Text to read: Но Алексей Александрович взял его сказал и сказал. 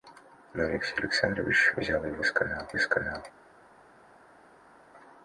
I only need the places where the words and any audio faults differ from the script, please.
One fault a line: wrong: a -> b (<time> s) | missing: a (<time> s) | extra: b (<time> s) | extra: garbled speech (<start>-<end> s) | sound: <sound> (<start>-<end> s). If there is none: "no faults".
no faults